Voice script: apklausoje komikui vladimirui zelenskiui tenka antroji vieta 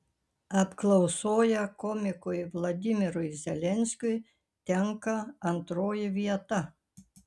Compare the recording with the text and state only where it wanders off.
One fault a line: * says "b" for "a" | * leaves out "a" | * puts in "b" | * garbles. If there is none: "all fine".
all fine